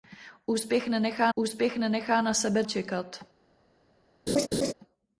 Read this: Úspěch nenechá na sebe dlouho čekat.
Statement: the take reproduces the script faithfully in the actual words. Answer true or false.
false